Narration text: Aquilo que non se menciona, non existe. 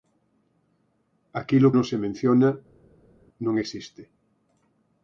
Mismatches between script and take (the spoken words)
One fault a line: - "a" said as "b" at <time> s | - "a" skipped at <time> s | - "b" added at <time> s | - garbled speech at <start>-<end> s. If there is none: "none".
- "que" skipped at 1.7 s